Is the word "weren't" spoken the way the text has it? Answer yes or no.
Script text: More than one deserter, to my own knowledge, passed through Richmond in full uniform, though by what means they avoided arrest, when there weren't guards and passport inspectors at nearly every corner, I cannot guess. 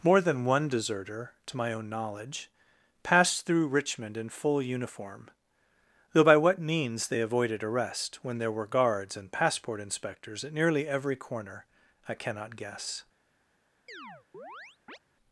no